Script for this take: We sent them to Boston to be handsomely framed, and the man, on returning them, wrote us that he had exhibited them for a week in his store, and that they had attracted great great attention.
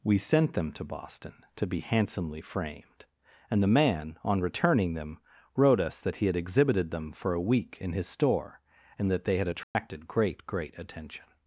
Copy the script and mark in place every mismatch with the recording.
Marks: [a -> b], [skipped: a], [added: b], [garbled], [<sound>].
We sent them to Boston to be handsomely framed, and the man, on returning them, wrote us that he had exhibited them for a week in his store, and that they had attracted [dropout] great great attention.